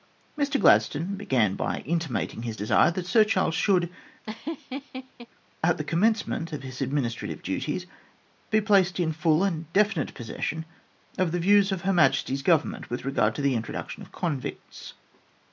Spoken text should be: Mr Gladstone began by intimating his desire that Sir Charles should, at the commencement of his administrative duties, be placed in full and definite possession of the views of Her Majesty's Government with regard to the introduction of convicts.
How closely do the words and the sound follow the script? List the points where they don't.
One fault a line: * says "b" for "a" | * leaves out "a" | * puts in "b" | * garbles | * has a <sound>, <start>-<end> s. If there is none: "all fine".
* has a laugh, 4.2-5.3 s